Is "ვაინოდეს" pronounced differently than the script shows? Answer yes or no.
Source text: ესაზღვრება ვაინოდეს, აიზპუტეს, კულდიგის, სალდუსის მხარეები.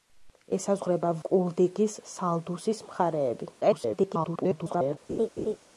yes